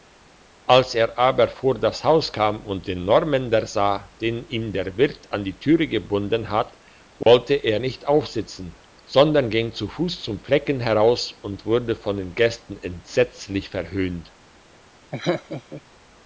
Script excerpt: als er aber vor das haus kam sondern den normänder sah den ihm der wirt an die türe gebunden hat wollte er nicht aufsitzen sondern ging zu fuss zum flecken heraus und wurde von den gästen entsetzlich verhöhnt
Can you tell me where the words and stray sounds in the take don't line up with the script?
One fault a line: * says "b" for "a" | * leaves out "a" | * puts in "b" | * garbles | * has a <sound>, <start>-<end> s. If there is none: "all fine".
* says "und" for "sondern"
* has a dropout, 7.2-7.3 s
* has a laugh, 15.1-15.8 s